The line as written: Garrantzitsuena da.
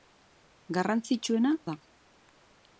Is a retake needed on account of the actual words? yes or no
no